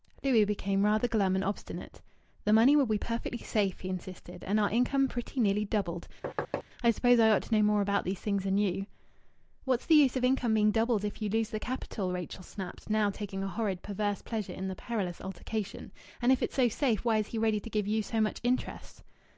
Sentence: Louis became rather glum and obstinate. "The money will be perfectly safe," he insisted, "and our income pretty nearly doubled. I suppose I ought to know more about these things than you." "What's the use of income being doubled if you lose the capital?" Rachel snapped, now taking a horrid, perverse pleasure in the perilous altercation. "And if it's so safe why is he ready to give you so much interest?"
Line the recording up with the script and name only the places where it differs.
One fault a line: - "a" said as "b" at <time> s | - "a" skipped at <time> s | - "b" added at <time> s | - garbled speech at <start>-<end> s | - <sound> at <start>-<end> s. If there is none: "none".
- thud at 6.2-6.6 s